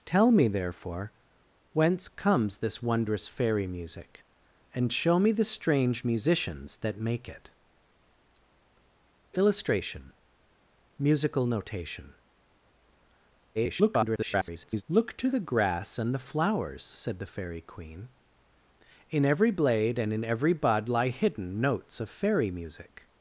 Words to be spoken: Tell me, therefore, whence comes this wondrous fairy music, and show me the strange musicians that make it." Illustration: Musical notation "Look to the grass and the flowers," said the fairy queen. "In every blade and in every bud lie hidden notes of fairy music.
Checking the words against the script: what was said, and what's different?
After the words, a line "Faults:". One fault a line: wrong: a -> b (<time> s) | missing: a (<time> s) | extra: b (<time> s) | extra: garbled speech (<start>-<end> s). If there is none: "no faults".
Tell me, therefore, whence comes this wondrous fairy music, and show me the strange musicians that make it." Illustration: Musical notation [garbled] "Look to the grass and the flowers," said the fairy queen. "In every blade and in every bud lie hidden notes of fairy music.
Faults:
extra: garbled speech (13.5-14.8 s)